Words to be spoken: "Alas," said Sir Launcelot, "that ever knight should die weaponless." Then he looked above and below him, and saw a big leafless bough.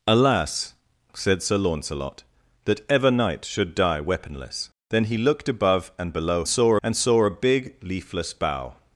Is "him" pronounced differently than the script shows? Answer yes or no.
yes